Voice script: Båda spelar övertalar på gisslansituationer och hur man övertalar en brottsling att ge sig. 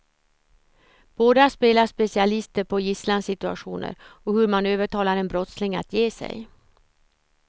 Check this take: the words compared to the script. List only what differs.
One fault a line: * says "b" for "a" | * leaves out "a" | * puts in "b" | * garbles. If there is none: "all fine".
* says "specialister" for "övertalar"